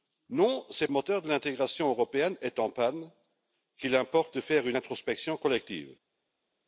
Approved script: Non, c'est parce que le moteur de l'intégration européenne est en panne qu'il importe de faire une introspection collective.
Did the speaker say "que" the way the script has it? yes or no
no